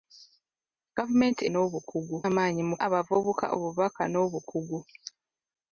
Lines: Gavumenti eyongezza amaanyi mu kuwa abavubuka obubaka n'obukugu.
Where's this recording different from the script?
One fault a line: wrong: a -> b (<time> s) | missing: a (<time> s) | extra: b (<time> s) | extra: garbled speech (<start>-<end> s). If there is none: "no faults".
wrong: eyongezza -> n'obukugu (1.5 s)
missing: kuwa (2.8 s)